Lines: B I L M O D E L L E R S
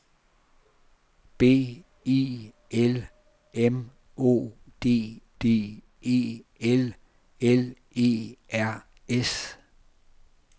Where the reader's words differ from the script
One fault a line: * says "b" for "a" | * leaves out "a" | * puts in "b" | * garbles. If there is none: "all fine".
* puts in "D"